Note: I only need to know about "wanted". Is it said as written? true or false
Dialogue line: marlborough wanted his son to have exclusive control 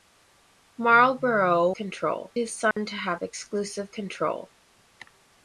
false